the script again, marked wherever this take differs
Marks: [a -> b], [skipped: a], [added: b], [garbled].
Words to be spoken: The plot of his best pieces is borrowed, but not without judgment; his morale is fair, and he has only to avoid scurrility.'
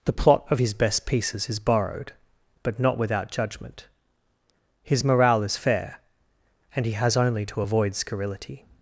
The plot of his best pieces is borrowed, but not without judgment; his morale is fair, and he has only to avoid scurrility.'